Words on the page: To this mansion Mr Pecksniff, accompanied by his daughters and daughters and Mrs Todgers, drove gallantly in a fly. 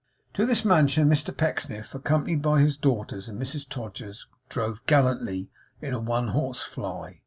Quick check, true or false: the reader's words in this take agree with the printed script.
false